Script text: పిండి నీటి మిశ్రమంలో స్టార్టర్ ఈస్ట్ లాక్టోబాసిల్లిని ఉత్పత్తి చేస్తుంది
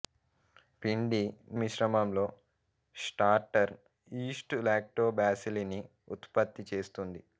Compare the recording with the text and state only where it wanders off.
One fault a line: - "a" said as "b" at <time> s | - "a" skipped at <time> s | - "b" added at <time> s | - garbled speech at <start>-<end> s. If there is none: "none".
- "నీటి" skipped at 1.2 s